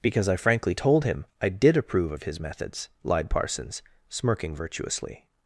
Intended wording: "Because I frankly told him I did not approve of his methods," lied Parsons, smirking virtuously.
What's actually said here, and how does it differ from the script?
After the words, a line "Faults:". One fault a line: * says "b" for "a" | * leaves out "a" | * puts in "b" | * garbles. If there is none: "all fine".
"Because I frankly told him I did approve of his methods," lied Parsons, smirking virtuously.
Faults:
* leaves out "not"